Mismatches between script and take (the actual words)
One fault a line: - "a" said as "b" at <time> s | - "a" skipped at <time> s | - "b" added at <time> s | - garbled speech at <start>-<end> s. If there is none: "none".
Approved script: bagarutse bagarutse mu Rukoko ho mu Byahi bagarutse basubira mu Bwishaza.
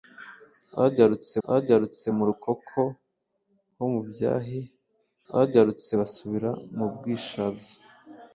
none